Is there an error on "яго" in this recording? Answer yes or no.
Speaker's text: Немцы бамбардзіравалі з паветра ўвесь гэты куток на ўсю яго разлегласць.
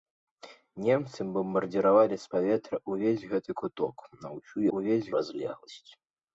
yes